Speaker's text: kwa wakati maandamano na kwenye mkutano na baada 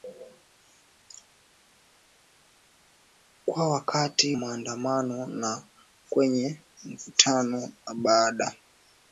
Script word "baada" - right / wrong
right